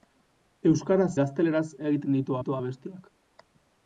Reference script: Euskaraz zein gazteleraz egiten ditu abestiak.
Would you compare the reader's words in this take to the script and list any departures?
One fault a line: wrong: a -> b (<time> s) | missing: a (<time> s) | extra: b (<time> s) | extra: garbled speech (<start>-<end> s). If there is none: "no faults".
missing: zein (1.1 s)
extra: ditu (2.4 s)